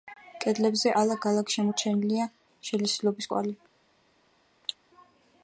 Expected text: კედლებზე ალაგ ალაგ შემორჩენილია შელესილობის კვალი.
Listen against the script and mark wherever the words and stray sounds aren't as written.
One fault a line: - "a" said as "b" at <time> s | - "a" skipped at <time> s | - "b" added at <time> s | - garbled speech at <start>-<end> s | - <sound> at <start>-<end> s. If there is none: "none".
- cough at 4.6-4.8 s